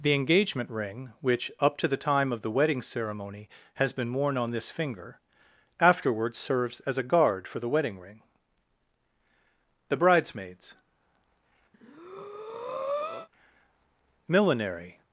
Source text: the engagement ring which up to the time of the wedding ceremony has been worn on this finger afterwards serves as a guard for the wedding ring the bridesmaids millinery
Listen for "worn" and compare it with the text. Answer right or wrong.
right